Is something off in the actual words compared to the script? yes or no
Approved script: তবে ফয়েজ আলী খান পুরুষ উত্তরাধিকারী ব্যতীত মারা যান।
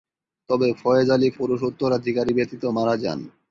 yes